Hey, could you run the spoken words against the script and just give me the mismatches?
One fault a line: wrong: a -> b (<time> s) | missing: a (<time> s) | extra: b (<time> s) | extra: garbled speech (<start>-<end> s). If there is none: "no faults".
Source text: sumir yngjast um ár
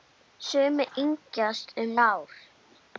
no faults